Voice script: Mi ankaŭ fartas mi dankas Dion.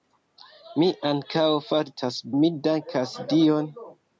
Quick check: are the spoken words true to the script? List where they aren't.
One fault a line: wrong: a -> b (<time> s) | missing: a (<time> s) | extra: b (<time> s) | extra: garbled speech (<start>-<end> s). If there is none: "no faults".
no faults